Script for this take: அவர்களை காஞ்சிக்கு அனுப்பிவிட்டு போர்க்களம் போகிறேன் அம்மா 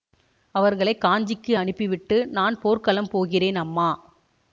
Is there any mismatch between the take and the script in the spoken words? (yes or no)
yes